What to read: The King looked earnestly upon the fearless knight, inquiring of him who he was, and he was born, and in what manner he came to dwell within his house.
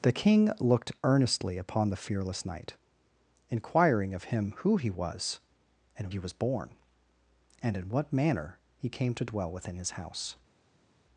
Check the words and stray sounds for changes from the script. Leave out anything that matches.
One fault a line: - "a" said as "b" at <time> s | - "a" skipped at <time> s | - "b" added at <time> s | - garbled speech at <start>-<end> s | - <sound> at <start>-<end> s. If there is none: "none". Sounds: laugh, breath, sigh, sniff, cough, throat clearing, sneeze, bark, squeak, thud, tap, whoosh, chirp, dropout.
none